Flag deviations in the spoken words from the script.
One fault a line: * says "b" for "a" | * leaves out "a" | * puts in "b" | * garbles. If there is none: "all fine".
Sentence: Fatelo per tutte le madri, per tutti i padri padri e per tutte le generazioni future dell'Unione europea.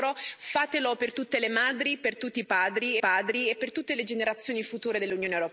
all fine